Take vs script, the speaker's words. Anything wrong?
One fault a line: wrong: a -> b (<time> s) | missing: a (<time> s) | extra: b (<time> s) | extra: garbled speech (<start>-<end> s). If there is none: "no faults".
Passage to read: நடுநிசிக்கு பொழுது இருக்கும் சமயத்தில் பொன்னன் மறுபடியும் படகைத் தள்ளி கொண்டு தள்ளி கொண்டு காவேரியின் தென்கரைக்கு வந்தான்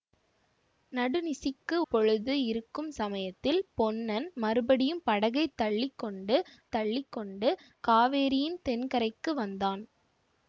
no faults